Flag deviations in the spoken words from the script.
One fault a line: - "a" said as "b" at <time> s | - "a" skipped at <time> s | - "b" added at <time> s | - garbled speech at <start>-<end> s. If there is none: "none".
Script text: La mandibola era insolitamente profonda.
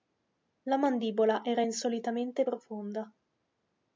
none